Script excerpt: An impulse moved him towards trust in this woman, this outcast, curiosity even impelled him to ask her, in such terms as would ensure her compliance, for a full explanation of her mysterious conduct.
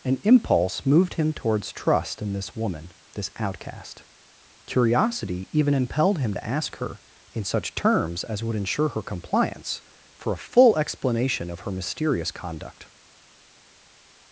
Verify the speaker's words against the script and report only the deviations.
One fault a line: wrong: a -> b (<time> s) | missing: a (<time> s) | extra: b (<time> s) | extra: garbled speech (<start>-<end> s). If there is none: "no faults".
no faults